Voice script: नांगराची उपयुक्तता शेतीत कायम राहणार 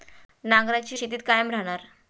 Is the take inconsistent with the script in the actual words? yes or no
yes